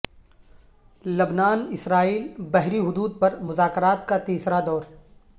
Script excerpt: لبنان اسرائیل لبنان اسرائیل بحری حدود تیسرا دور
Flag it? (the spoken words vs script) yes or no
yes